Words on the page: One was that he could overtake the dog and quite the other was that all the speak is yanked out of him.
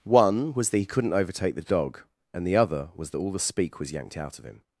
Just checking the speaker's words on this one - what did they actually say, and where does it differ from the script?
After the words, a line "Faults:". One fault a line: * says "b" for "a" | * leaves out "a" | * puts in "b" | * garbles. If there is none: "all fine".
One was that he couldn't overtake the dog and the other was that all the speak was yanked out of him.
Faults:
* says "couldn't" for "could"
* leaves out "quite"
* says "was" for "is"